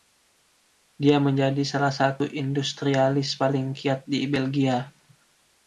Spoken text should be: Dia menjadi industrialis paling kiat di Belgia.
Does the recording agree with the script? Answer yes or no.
no